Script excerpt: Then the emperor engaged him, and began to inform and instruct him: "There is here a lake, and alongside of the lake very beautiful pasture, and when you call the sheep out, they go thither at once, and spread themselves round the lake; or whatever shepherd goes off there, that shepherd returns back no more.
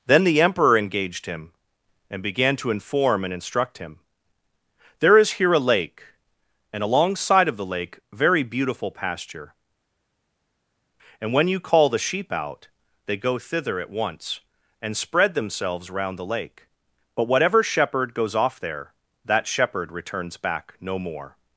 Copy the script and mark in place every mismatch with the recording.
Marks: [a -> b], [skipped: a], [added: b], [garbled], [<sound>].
Then the emperor engaged him, and began to inform and instruct him: "There is here a lake, and alongside of the lake very beautiful pasture, and when you call the sheep out, they go thither at once, and spread themselves round the lake; [or -> but] whatever shepherd goes off there, that shepherd returns back no more.